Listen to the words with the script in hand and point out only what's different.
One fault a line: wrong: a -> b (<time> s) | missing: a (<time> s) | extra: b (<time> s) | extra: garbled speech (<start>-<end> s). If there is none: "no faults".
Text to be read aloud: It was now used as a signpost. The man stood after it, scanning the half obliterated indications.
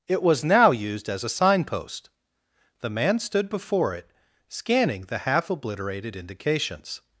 wrong: after -> before (3.5 s)